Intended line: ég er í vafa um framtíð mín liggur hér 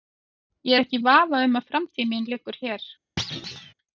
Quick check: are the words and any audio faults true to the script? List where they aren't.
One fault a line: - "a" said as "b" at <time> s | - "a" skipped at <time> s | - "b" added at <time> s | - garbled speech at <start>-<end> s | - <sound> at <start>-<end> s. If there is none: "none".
- "ekki" added at 0.8 s
- "að" added at 1.6 s
- thud at 3.2-3.7 s